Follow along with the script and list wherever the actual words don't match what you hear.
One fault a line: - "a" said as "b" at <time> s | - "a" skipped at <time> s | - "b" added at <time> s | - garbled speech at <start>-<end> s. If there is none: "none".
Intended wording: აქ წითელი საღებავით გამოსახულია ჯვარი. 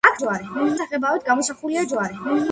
- "წითელი" said as "ჯვარი" at 0.2 s